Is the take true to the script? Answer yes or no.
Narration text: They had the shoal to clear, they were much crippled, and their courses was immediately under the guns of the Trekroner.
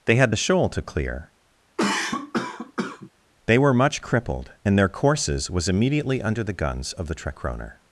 yes